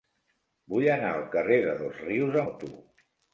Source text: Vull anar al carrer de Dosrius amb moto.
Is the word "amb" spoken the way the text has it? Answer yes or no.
no